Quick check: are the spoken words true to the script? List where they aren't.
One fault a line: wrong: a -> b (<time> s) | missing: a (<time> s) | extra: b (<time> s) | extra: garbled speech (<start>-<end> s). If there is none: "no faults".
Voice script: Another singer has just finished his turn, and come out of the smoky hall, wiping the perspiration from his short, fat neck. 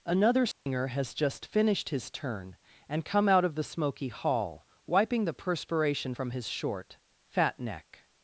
no faults